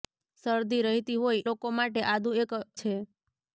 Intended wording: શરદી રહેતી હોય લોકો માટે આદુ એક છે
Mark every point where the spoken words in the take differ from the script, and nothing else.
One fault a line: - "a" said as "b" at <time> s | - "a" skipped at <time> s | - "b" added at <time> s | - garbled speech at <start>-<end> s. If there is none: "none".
none